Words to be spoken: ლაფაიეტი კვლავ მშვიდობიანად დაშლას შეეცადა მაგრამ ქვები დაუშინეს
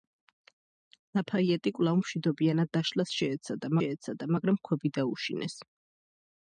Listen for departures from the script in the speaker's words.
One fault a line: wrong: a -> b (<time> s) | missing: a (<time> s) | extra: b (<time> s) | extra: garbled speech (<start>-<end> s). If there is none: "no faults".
extra: შეეცადა (3.8 s)